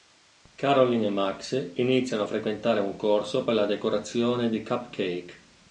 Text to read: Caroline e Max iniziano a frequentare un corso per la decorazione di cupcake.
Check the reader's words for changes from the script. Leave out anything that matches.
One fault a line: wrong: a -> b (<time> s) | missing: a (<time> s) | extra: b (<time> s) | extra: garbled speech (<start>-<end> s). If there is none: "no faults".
no faults